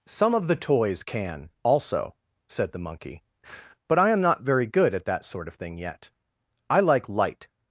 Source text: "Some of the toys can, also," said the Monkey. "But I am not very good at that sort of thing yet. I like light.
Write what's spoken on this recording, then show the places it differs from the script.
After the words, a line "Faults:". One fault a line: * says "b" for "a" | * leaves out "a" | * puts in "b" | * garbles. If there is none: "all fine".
"Some of the toys can, also," said the Monkey. "But I am not very good at that sort of thing yet. I like light.
Faults:
all fine